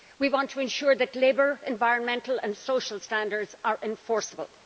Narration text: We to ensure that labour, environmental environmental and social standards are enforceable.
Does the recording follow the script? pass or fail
fail